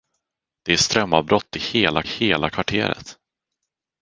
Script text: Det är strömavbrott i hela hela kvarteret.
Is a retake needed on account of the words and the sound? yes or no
no